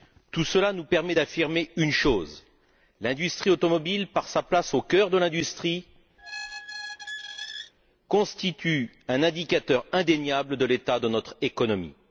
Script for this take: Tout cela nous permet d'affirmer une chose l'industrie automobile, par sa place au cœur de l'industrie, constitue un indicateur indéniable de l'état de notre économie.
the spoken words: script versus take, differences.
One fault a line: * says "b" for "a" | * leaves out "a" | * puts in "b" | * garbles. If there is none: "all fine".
all fine